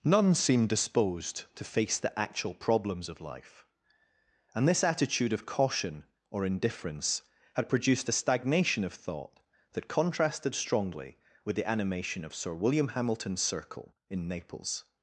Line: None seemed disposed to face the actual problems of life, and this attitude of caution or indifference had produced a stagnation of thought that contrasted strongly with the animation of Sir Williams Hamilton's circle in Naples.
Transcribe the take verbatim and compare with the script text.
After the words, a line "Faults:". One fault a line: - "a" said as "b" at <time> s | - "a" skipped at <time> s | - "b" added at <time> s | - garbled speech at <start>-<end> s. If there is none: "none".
None seemed disposed to face the actual problems of life, and this attitude of caution or indifference had produced a stagnation of thought that contrasted strongly with the animation of Sir William Hamilton's circle in Naples.
Faults:
- "Williams" said as "William" at 12.6 s